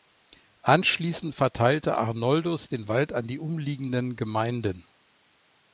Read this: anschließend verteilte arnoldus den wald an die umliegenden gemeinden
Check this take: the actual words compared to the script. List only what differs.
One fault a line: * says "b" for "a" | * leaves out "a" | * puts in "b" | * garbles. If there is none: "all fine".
all fine